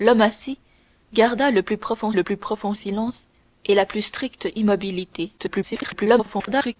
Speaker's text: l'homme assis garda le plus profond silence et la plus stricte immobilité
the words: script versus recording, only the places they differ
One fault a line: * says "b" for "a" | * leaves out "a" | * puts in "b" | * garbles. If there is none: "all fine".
* puts in "le plus profond"
* garbles